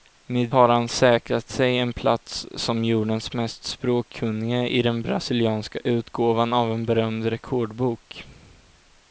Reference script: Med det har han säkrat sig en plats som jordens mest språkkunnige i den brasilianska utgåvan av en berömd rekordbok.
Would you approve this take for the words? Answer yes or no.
no